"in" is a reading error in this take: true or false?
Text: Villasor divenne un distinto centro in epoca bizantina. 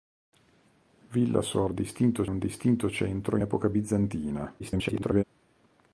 true